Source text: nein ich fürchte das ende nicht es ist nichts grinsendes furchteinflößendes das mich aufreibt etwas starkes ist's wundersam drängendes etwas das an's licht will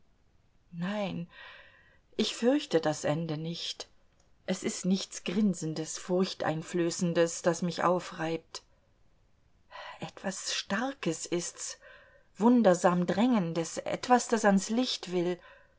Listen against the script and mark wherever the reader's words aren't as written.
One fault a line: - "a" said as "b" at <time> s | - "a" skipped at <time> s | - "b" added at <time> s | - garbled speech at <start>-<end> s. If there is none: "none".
none